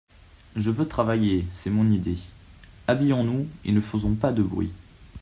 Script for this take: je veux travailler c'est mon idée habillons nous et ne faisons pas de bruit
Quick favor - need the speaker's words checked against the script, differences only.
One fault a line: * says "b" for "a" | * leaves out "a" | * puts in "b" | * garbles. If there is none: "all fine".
all fine